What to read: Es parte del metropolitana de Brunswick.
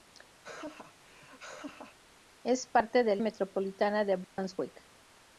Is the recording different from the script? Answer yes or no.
no